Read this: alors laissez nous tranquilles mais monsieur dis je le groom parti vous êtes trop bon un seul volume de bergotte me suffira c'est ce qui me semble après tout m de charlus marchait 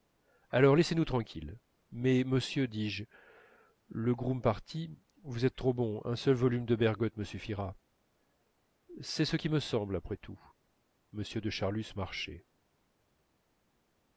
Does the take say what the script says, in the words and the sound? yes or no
yes